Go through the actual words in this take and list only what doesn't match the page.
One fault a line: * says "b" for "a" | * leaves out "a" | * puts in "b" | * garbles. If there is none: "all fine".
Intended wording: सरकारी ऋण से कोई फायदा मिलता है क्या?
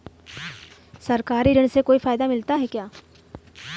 all fine